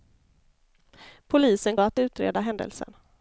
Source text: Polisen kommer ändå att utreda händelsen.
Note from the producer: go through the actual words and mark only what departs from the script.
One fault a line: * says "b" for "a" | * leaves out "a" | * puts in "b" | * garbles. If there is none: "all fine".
* leaves out "kommer ändå"